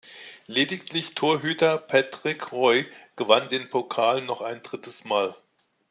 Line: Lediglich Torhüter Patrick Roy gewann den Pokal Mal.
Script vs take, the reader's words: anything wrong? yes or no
yes